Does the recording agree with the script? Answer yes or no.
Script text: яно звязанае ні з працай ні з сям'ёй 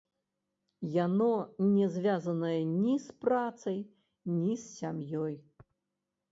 no